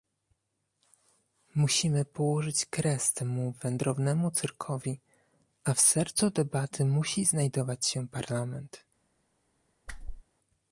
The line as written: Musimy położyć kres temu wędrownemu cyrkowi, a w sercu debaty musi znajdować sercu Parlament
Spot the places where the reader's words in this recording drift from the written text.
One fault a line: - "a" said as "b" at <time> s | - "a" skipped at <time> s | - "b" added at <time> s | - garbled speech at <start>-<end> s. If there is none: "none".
- "sercu" said as "się" at 7.9 s